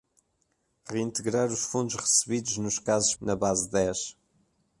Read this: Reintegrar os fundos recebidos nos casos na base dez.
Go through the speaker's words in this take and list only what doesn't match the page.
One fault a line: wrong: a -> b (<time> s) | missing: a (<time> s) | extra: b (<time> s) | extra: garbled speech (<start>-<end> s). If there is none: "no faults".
no faults